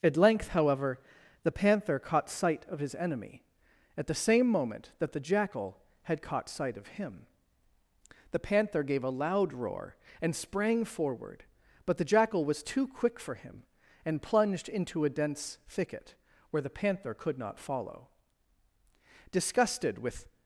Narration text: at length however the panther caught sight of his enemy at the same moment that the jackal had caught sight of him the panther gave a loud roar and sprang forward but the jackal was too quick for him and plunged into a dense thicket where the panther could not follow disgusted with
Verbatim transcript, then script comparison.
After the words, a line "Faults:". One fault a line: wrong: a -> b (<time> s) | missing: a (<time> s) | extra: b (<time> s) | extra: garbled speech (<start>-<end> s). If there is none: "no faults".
at length however the panther caught sight of his enemy at the same moment that the jackal had caught sight of him the panther gave a loud roar and sprang forward but the jackal was too quick for him and plunged into a dense thicket where the panther could not follow disgusted with
Faults:
no faults